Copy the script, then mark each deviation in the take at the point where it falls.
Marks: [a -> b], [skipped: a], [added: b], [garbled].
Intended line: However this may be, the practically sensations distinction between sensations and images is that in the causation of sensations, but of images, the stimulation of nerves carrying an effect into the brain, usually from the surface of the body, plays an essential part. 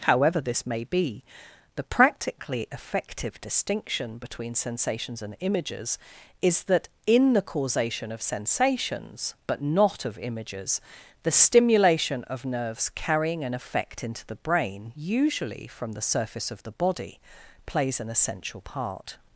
However this may be, the practically [sensations -> effective] distinction between sensations and images is that in the causation of sensations, but [added: not] of images, the stimulation of nerves carrying an effect into the brain, usually from the surface of the body, plays an essential part.